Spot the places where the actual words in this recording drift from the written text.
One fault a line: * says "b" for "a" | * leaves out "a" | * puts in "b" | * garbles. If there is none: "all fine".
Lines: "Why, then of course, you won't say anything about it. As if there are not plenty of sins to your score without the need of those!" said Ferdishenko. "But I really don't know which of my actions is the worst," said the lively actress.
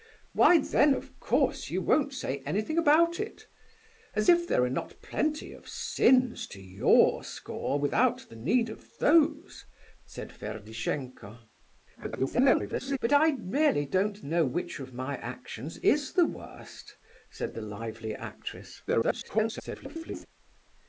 * garbles
* garbles